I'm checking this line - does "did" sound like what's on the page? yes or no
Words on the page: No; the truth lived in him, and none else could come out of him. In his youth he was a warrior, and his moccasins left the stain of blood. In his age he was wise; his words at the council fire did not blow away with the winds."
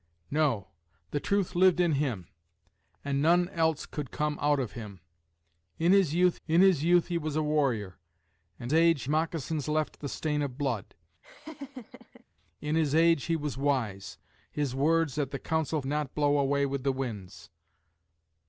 no